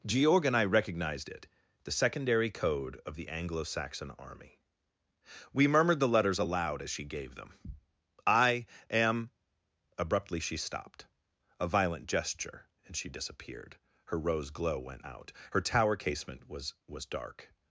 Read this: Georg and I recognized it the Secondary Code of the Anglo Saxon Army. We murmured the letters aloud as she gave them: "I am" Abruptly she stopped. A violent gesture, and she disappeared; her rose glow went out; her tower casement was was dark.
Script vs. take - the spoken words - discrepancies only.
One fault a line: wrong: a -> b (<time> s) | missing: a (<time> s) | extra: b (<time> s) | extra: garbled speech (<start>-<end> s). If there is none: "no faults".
no faults